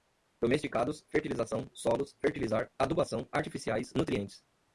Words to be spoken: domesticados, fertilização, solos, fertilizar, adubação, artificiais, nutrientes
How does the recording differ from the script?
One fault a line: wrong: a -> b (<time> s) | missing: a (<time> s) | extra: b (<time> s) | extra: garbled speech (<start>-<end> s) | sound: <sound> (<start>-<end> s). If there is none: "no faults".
no faults